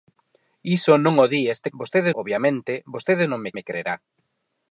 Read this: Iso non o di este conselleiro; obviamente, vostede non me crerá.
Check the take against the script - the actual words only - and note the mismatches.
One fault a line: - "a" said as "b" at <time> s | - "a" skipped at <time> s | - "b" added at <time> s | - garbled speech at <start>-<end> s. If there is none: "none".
- "conselleiro" said as "vostede" at 1.8 s
- "me" added at 3.6 s